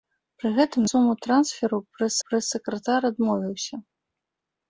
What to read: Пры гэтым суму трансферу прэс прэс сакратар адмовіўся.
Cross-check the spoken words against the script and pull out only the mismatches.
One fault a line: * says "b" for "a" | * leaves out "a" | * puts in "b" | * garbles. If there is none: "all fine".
all fine